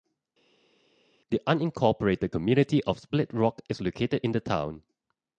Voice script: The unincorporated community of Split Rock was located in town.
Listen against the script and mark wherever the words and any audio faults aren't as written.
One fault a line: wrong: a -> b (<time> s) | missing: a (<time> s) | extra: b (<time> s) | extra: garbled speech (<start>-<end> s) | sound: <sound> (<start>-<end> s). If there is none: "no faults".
wrong: was -> is (3.7 s)
extra: the (4.3 s)